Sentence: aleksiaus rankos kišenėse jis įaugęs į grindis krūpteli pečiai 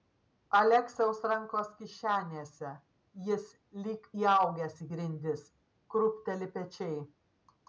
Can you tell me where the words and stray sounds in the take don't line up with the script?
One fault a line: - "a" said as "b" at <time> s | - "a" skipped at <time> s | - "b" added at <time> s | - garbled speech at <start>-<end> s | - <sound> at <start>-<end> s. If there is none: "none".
- "lyg" added at 3.8 s